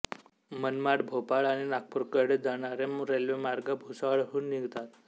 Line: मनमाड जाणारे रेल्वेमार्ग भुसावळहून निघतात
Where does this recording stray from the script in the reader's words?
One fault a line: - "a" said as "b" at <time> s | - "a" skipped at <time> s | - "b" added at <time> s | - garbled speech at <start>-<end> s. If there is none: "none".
- "भोपाळ आणि नागपूरकडे" added at 1.1 s